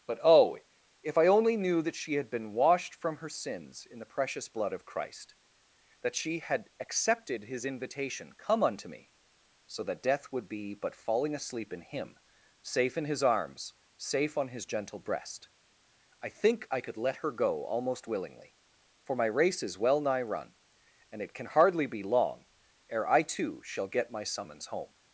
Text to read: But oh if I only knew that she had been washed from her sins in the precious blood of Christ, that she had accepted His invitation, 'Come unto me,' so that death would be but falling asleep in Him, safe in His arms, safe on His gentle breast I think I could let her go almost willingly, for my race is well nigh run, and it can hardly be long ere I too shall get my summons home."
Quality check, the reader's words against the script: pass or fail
pass